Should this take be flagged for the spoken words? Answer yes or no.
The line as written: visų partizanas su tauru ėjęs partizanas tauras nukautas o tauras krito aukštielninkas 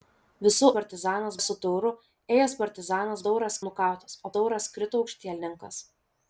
no